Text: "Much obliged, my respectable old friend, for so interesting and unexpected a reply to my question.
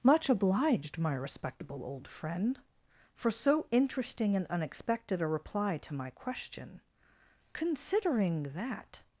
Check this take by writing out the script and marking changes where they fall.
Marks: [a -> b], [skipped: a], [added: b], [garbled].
"Much obliged, my respectable old friend, for so interesting and unexpected a reply to my question. [added: Considering that]